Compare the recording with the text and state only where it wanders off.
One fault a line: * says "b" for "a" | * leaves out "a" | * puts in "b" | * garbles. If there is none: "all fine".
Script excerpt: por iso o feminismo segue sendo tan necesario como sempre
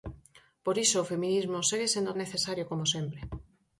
* leaves out "tan"